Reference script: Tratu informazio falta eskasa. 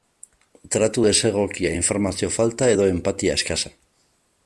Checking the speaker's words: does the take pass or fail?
fail